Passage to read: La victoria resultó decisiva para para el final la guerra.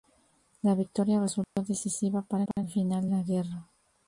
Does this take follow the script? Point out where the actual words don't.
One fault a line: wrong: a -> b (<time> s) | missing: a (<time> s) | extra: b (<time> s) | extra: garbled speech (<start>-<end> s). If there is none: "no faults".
no faults